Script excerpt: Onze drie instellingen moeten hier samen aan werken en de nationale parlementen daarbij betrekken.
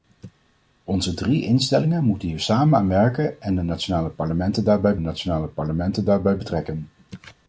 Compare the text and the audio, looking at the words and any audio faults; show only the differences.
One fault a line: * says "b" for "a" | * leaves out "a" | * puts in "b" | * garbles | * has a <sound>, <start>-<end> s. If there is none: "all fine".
* puts in "nationale parlementen daarbij"